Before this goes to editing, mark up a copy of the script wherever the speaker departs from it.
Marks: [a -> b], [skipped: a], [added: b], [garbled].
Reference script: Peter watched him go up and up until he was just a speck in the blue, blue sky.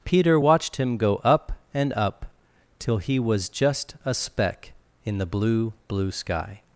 Peter watched him go up and up [until -> till] he was just a speck in the blue, blue sky.